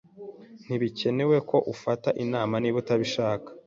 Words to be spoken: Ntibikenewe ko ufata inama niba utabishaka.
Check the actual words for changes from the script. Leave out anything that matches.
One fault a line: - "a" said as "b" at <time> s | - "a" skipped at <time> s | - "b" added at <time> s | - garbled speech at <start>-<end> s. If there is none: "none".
none